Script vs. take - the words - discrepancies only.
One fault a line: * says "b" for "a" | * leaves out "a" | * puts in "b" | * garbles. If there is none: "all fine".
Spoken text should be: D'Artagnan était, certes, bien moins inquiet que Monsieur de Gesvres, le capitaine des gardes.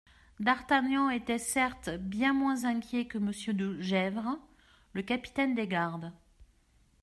all fine